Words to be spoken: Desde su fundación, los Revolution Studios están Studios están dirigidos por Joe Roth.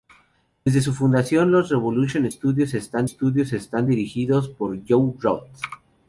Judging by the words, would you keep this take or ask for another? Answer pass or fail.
pass